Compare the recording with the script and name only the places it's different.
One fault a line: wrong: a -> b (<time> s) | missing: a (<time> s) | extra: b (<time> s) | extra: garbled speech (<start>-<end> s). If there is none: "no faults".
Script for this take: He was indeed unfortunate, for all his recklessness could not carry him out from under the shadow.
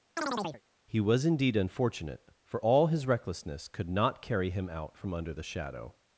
no faults